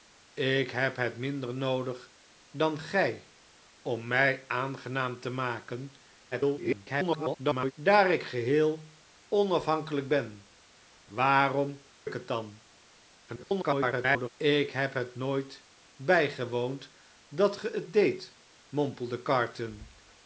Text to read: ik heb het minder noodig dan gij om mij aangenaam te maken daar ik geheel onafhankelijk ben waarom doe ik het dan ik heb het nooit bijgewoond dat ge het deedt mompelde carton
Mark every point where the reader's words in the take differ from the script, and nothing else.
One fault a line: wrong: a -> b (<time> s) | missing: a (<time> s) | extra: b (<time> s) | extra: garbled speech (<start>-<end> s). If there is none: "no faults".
extra: garbled speech (6.3-7.7 s)
missing: doe (11.8 s)
extra: garbled speech (13.3-14.3 s)